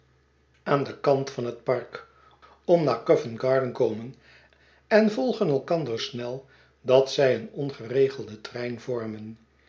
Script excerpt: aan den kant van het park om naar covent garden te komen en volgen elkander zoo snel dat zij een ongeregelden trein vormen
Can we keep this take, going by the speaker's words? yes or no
no